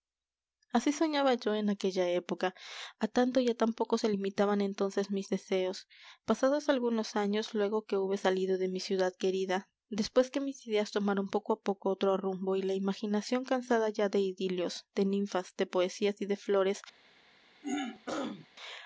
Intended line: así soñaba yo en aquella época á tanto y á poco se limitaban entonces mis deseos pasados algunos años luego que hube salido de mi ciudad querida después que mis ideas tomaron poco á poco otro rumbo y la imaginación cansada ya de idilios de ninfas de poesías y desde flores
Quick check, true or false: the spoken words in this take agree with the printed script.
false